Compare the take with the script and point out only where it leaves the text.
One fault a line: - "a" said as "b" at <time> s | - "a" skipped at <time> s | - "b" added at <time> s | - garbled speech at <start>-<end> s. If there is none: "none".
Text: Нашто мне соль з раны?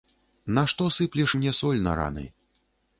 - "сыплеш" added at 0.9 s
- "з" said as "на" at 1.8 s